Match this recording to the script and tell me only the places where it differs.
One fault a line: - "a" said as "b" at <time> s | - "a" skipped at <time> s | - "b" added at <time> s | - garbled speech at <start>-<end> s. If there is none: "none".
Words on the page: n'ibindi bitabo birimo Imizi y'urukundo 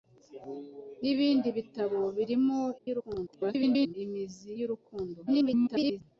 - garbled speech at 2.8-3.9 s
- garbled speech at 5.3-6.0 s